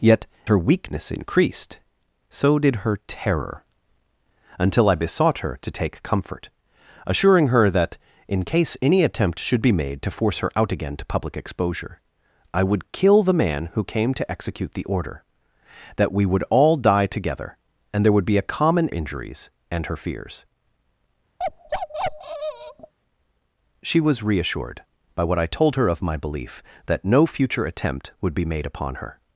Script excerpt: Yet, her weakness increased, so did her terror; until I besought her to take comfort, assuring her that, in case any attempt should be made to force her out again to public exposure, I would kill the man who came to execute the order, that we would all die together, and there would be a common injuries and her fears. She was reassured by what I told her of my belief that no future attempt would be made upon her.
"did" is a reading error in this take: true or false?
false